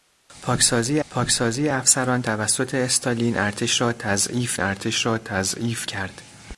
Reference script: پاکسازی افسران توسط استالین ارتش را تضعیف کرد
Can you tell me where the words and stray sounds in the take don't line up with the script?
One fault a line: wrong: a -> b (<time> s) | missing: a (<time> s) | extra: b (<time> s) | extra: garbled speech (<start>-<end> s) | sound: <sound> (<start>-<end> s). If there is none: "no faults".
extra: پاکسازی (1.1 s)
extra: ارتش را تضعیف (4.6 s)